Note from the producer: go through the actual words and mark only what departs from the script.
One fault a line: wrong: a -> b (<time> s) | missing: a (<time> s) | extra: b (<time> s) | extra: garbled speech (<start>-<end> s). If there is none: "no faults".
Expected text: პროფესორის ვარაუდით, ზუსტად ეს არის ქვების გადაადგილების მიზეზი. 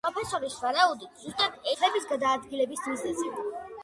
missing: ეს არის (1.7 s)